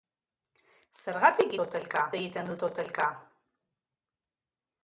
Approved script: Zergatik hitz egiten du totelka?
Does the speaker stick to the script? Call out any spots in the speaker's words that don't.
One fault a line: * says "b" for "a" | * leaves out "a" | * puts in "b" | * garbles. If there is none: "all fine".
* says "totelka" for "hitz"